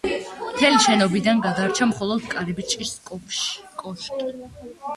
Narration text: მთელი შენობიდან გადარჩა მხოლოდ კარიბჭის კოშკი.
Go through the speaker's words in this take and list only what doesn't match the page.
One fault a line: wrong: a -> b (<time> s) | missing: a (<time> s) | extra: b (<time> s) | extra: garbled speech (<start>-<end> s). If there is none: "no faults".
no faults